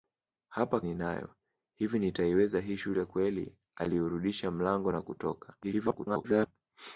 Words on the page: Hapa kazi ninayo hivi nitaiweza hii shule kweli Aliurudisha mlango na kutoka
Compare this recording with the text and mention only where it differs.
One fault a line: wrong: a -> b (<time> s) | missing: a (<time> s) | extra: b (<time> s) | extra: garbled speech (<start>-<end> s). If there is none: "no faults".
missing: kazi (0.8 s)
extra: garbled speech (5.6-6.5 s)